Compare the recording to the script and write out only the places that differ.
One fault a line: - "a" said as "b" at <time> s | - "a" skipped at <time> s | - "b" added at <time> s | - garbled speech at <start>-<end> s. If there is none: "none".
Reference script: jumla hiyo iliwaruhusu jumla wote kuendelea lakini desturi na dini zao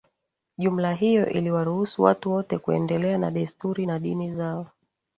- "jumla" said as "watu" at 2.0 s
- "lakini" said as "na" at 3.2 s